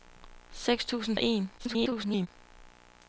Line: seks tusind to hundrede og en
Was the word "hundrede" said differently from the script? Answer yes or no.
yes